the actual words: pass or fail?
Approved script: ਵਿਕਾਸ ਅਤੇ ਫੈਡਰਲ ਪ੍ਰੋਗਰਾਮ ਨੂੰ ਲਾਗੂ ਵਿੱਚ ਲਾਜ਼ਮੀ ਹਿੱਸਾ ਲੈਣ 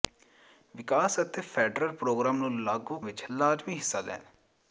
pass